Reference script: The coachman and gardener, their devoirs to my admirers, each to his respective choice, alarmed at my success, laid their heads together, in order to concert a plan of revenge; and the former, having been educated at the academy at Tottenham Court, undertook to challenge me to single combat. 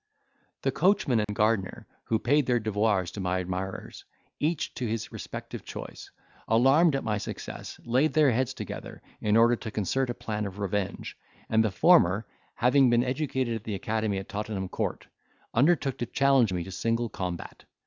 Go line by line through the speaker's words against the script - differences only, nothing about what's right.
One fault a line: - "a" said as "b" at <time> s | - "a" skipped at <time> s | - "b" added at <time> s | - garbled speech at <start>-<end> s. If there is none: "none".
- "who paid" added at 2.0 s